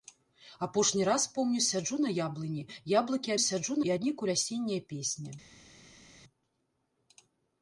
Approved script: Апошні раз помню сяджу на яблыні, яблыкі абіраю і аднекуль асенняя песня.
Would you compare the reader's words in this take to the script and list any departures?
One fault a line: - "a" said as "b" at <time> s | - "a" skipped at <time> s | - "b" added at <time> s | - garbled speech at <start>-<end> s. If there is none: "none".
- "абіраю" said as "сяджу" at 3.4 s